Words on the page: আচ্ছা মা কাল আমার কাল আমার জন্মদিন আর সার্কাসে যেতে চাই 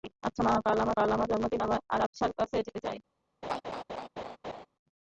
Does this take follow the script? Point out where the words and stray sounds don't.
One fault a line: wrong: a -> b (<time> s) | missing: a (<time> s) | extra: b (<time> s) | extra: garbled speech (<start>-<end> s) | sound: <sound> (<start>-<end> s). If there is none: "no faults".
sound: laugh (3.4-4.7 s)